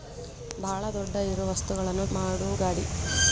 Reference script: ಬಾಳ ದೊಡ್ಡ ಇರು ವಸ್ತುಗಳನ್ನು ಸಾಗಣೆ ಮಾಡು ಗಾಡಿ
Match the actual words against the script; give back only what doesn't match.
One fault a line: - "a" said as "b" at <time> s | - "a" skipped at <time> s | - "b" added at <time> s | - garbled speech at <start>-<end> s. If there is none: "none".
- "ಸಾಗಣೆ" skipped at 2.0 s